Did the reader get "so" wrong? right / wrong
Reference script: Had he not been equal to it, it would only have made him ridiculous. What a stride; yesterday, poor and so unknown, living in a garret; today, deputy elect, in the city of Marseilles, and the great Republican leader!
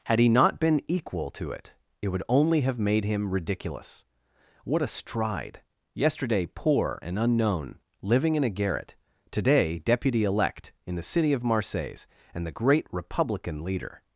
wrong